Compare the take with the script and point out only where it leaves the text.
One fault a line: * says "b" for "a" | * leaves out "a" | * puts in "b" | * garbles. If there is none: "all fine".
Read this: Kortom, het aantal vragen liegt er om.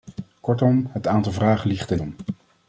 all fine